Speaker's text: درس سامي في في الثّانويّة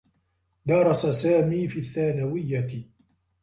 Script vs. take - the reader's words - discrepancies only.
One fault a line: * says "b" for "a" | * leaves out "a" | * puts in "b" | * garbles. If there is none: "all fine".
* leaves out "في"